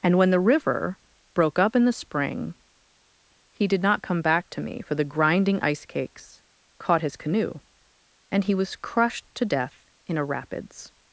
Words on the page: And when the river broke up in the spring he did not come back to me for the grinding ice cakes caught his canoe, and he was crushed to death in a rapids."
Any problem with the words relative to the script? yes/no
no